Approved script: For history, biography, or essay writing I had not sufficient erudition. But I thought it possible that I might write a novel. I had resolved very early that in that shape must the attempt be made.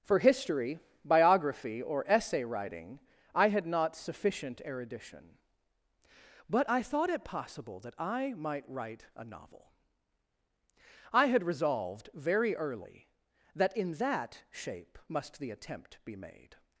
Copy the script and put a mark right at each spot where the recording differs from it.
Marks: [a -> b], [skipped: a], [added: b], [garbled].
For history, biography, or essay writing I had not sufficient erudition. But I thought it possible that I might write a novel. I had resolved very early that in that shape must the attempt be made.